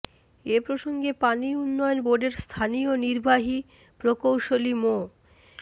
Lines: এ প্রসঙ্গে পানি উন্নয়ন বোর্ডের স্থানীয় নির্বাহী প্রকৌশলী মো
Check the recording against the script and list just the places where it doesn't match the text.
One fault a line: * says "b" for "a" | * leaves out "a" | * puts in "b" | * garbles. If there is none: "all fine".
all fine